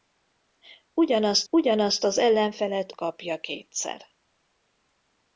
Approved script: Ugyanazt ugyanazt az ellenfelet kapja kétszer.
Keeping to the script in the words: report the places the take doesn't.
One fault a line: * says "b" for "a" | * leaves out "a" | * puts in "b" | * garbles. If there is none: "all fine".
all fine